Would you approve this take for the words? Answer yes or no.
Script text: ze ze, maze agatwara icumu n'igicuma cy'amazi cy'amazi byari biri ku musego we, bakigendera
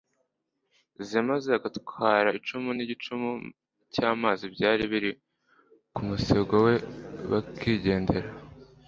no